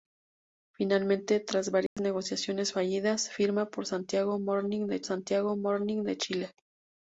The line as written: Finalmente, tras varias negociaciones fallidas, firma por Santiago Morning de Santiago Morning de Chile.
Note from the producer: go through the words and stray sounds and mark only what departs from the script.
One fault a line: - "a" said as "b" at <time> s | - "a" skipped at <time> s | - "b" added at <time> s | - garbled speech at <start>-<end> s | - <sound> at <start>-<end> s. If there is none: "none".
- dropout at 1.9-2.0 s